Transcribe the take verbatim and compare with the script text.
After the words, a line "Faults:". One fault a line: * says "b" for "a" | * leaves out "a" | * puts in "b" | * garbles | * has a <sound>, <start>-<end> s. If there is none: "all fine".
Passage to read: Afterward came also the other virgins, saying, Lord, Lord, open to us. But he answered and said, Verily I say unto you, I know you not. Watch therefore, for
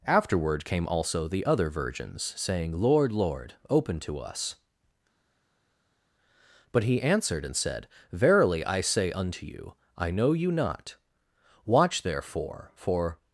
Afterward came also the other virgins, saying, Lord, Lord, open to us. But he answered and said, Verily I say unto you, I know you not. Watch therefore, for
Faults:
all fine